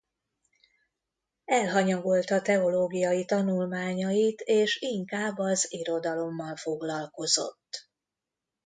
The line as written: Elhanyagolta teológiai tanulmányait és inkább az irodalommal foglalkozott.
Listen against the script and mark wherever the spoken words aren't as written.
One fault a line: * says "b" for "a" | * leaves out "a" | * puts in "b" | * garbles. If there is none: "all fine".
all fine